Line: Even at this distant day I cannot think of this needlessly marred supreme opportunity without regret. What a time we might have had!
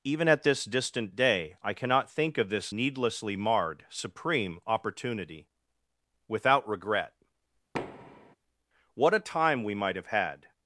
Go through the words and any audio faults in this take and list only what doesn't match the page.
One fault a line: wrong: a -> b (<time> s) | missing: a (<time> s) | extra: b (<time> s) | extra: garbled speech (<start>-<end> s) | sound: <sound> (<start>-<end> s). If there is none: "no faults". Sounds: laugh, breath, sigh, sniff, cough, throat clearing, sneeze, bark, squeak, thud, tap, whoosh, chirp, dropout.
sound: thud (7.7-8.4 s)